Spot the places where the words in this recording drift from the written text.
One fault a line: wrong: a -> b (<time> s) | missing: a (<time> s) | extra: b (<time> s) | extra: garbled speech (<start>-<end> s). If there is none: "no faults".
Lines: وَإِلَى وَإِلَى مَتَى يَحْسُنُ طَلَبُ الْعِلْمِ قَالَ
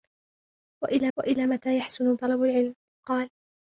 no faults